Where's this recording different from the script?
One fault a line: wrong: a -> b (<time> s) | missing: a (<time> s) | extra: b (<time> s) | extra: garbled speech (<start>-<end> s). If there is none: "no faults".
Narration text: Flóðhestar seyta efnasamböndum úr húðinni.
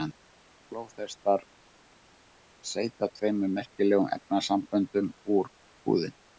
extra: tveimur merkilegum (3.2 s)